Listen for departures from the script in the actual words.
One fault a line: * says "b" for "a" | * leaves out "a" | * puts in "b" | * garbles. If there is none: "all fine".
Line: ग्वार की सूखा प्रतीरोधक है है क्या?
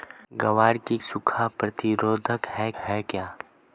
all fine